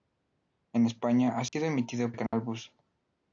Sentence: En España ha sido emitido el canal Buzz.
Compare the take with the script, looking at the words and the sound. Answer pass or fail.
fail